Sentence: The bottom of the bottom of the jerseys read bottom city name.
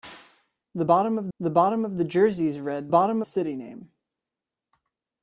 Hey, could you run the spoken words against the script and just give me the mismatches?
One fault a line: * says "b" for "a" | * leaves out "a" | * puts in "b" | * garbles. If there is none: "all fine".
all fine